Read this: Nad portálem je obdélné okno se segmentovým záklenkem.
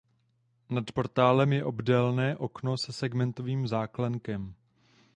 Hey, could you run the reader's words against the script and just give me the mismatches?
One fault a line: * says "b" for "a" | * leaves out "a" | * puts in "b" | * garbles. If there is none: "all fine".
all fine